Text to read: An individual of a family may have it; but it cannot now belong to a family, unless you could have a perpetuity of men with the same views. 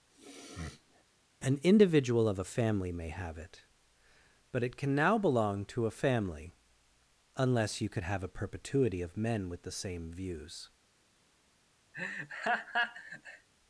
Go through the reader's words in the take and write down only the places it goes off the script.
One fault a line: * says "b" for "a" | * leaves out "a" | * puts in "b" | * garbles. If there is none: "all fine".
* says "can" for "cannot"